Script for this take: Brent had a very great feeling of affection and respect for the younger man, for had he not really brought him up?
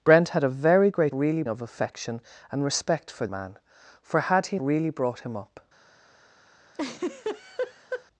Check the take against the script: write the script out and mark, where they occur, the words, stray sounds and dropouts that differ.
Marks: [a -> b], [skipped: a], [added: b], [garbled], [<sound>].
Brent had a very great [feeling -> really] of affection and respect for [skipped: the younger] man, for had he [skipped: not] really brought him up? [laugh]